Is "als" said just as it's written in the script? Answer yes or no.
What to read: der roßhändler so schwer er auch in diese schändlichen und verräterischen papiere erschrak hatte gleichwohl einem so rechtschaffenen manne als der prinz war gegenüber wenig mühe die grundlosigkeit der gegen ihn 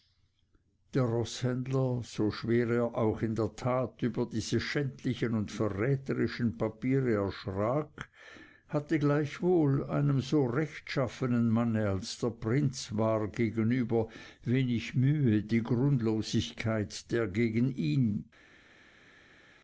yes